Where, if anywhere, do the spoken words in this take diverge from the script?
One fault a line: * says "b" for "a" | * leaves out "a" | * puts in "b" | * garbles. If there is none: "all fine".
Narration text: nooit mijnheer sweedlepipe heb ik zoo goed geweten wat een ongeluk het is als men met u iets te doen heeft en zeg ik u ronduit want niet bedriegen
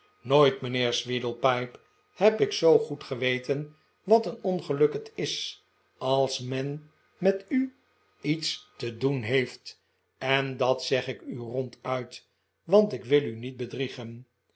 * puts in "dat"
* puts in "ik wil u"